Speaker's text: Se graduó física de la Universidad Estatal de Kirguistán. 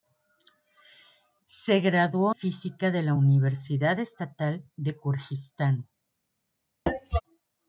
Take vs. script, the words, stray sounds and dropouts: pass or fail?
fail